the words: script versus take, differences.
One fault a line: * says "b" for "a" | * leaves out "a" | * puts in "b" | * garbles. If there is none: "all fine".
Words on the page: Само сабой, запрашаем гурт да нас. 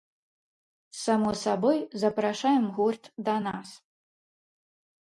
all fine